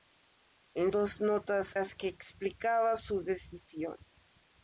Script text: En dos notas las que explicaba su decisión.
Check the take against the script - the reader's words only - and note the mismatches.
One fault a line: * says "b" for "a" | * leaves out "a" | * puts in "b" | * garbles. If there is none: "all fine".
all fine